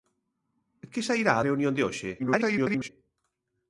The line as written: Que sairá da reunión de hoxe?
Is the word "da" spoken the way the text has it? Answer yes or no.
no